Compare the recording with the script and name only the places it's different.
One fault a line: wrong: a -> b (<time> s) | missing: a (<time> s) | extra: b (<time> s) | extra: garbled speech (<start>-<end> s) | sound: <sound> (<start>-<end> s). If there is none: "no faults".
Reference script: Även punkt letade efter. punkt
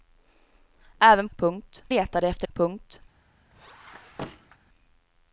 sound: squeak (3.5-4.6 s)